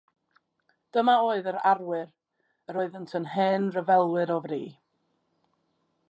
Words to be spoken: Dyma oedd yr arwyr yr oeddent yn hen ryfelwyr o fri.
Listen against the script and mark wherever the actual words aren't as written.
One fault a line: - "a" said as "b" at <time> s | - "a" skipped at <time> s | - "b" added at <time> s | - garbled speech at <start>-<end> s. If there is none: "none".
none